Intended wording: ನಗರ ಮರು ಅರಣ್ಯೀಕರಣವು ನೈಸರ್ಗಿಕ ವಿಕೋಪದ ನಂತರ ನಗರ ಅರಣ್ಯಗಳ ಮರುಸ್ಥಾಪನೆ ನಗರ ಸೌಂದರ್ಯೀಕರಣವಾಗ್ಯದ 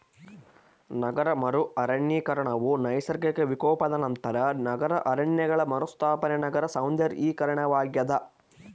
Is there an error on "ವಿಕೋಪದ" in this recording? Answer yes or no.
no